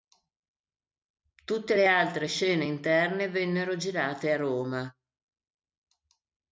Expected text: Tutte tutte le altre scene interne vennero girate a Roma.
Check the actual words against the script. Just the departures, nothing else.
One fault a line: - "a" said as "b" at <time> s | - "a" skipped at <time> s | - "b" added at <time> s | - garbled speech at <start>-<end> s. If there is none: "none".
- "tutte" skipped at 1.8 s